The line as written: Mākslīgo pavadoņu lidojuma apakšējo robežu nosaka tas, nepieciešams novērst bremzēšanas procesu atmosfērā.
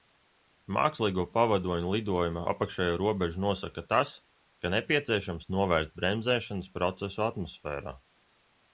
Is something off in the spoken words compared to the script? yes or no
yes